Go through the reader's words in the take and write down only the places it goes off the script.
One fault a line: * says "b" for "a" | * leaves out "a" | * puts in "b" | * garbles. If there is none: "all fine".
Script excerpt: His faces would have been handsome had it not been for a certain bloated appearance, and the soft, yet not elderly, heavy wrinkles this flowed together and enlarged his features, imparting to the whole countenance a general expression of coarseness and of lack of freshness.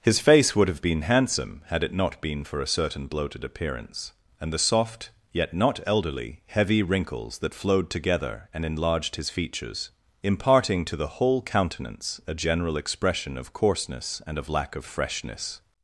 * says "face" for "faces"
* says "that" for "this"